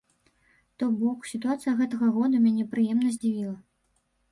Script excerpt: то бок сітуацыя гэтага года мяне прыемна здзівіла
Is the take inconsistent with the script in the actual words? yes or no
no